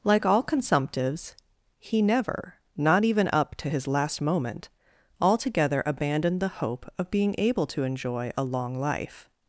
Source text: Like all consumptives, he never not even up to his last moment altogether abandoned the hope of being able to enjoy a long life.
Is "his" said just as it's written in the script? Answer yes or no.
yes